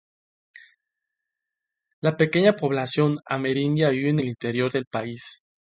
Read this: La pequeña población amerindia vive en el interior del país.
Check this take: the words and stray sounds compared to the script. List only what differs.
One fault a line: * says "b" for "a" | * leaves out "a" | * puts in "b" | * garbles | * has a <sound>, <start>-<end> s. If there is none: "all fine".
all fine